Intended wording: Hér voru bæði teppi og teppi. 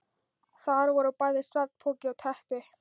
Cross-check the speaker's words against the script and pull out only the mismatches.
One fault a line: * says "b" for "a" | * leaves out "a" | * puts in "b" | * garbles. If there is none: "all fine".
* says "Þar" for "Hér"
* says "svefnpoki" for "teppi"